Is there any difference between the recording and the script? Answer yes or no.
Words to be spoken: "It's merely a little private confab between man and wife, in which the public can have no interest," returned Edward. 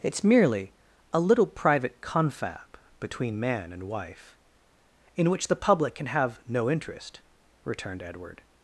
no